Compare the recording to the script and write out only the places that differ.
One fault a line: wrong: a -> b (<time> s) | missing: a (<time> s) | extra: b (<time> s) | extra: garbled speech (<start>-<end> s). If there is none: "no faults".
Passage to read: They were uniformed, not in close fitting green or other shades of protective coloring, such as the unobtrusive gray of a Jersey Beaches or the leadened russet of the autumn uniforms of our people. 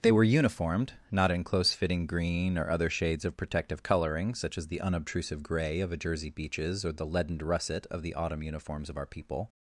no faults